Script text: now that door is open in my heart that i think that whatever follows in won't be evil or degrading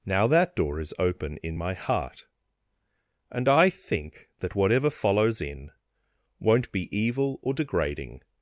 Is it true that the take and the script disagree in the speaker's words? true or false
true